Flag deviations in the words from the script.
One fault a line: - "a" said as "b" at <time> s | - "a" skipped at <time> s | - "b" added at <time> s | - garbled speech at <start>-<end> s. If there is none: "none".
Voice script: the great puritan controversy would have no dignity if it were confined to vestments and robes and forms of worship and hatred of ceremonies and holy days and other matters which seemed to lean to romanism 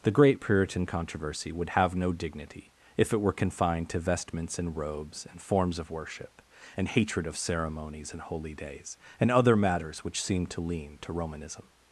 none